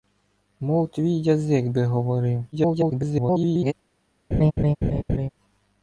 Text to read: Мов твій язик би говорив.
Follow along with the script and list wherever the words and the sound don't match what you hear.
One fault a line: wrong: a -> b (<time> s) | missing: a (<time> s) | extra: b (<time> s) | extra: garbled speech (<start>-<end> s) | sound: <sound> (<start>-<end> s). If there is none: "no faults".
extra: garbled speech (2.5-3.7 s)
sound: laugh (4.3-5.3 s)